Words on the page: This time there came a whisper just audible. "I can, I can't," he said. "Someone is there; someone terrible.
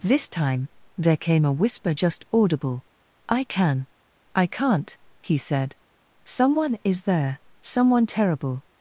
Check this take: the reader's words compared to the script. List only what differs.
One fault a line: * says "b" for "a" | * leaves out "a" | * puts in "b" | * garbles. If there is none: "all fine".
all fine